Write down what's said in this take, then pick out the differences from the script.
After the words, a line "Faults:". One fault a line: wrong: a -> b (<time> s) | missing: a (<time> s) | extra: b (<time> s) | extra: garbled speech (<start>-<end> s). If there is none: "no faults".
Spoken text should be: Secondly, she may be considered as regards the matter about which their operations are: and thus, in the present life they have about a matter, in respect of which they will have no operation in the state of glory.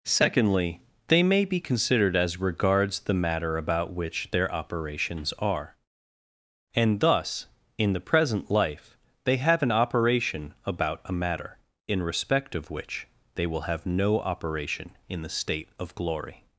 Secondly, they may be considered as regards the matter about which their operations are: and thus, in the present life they have an operation about a matter, in respect of which they will have no operation in the state of glory.
Faults:
wrong: she -> they (1.1 s)
extra: an operation (9.6 s)